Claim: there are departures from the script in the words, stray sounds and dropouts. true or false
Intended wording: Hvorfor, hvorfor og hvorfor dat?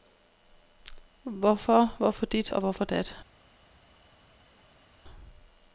true